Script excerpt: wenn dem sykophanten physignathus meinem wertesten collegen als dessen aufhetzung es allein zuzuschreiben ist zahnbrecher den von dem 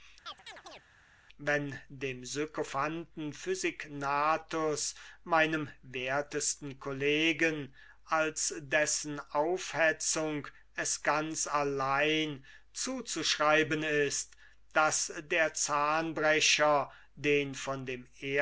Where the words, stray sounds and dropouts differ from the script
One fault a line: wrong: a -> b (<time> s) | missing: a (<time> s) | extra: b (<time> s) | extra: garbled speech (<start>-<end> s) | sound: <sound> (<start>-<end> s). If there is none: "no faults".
sound: chirp (0.3-0.8 s)
extra: ganz (11.0 s)
extra: daß der (14.7 s)